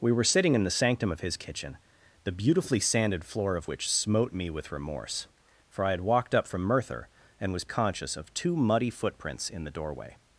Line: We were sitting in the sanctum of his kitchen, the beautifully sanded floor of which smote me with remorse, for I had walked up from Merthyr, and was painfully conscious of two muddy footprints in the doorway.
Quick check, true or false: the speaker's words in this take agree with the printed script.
false